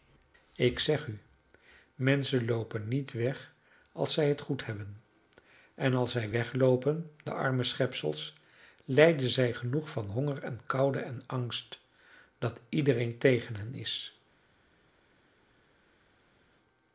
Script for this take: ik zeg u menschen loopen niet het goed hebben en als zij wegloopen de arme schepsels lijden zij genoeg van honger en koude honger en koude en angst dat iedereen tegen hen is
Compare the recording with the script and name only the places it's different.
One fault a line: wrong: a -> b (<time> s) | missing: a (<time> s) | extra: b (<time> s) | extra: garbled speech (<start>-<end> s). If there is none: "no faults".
extra: weg als zij (3.1 s)
missing: honger en koude (11.0 s)